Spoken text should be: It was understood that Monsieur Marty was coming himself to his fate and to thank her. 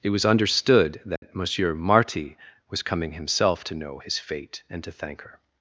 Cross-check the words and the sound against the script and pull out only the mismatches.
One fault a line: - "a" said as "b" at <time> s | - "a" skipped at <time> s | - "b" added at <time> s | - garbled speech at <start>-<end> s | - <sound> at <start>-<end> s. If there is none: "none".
- dropout at 1.2-1.2 s
- "know" added at 3.8 s